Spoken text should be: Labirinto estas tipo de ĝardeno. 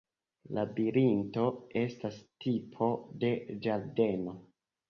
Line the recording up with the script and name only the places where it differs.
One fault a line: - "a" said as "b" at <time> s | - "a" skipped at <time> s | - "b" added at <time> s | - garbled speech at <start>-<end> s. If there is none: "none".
none